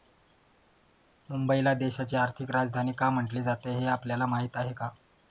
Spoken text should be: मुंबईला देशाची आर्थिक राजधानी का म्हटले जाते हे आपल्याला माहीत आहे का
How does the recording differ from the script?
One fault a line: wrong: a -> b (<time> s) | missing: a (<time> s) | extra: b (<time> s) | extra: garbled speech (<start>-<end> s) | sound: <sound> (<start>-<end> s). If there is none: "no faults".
no faults